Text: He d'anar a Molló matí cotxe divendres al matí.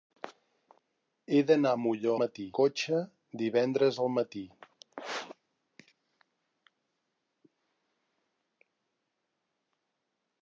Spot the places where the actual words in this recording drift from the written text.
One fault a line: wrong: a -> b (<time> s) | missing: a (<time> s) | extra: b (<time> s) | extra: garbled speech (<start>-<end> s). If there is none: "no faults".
no faults